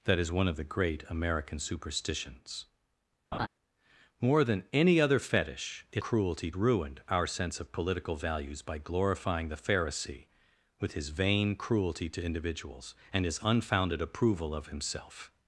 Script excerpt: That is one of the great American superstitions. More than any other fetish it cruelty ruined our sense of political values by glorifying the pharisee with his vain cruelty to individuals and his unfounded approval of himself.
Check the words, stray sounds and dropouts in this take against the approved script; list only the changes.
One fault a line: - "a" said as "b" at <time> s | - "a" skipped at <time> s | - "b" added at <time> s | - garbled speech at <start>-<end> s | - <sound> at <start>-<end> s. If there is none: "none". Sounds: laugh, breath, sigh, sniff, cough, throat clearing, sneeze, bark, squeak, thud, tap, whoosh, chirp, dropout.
- laugh at 3.3-3.5 s